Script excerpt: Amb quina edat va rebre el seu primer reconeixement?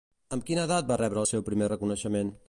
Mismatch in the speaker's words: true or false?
false